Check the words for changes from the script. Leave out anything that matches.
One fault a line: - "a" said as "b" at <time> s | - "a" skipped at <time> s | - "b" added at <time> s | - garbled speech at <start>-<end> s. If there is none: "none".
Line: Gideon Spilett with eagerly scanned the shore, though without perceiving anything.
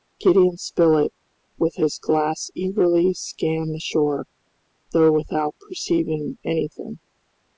- "his glass" added at 1.8 s